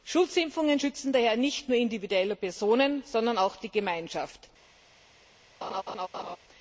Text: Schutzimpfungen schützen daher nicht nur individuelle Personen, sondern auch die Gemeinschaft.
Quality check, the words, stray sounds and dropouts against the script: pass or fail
fail